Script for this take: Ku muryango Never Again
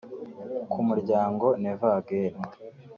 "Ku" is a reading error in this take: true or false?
false